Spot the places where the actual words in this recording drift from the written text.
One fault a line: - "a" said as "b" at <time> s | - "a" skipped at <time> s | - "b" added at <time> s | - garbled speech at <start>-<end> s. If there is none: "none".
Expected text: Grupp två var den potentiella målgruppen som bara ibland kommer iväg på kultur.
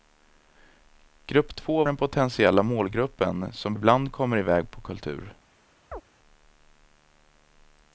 - "var" skipped at 1.8 s
- "bara" skipped at 3.8 s